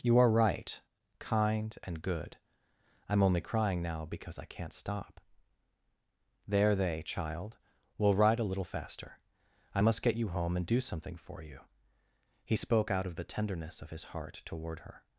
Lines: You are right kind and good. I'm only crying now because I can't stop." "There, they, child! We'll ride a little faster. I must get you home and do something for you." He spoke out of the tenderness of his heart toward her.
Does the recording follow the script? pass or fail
pass